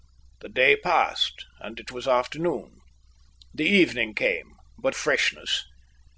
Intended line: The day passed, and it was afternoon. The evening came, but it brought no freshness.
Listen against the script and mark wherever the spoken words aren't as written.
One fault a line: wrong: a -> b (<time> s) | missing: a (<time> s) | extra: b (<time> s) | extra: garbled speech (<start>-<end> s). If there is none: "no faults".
missing: it brought no (5.0 s)